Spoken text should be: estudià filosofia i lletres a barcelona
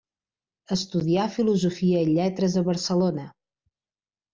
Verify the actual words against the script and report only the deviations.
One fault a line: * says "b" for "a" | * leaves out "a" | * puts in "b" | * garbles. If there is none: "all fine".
all fine